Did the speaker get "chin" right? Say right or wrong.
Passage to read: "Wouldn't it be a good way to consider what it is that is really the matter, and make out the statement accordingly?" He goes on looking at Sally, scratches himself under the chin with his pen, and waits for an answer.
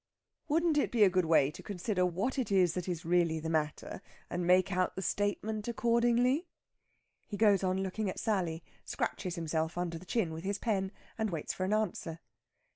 right